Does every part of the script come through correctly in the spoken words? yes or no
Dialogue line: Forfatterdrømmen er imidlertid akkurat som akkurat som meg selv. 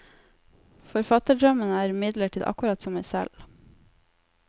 no